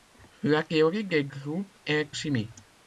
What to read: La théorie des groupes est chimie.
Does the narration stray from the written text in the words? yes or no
no